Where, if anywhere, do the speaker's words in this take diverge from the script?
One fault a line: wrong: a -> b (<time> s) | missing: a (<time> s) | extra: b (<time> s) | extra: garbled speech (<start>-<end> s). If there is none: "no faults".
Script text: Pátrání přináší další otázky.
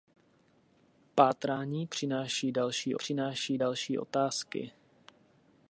extra: přináší další (2.9 s)